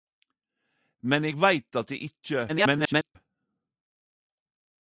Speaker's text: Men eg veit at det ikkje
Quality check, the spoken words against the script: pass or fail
fail